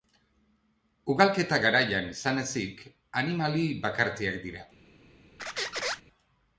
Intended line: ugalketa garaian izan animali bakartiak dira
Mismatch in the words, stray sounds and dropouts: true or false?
true